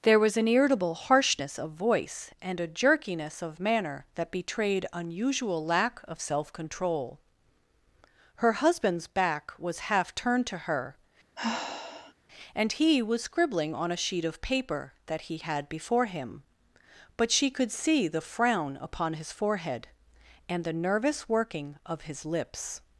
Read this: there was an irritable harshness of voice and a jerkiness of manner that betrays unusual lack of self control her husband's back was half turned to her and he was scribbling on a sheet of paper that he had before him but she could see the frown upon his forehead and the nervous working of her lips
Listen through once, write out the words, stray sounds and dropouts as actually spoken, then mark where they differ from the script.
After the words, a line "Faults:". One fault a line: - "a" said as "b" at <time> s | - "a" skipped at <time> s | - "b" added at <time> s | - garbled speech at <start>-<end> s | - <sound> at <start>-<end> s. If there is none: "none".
there was an irritable harshness of voice and a jerkiness of manner that betrayed unusual lack of self control her husband's back was half turned to her and he was scribbling on a sheet of paper that he had before him but she could see the frown upon his forehead and the nervous working of his lips
Faults:
- "betrays" said as "betrayed" at 4.3 s
- sigh at 11.3-12.1 s
- "her" said as "his" at 22.0 s